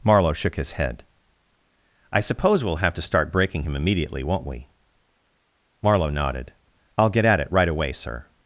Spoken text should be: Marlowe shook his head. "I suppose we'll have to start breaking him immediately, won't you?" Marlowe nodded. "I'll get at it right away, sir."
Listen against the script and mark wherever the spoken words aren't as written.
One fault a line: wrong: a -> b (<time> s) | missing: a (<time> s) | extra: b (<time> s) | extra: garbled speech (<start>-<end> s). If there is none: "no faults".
wrong: you -> we (4.5 s)